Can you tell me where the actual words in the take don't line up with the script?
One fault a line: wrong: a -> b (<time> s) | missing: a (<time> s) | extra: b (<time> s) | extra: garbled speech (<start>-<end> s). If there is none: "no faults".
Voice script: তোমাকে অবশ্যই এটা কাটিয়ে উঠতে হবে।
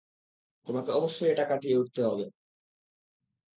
no faults